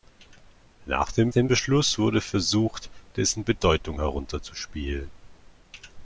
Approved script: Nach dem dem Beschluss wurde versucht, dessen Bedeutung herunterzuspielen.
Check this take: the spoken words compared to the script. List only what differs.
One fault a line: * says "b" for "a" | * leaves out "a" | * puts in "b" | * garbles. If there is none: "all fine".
all fine